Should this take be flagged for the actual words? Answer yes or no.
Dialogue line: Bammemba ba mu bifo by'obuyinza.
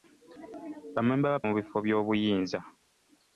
no